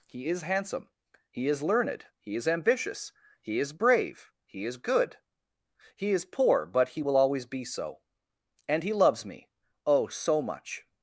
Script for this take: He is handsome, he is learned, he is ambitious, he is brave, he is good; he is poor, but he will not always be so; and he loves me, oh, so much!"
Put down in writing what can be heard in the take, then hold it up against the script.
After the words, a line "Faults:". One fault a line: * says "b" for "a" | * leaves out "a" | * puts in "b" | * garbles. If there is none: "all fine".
He is handsome, he is learned, he is ambitious, he is brave, he is good; he is poor, but he will always be so; and he loves me, oh, so much!"
Faults:
* leaves out "not"